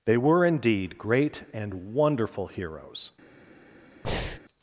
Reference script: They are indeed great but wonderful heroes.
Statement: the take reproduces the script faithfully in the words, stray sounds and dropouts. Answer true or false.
false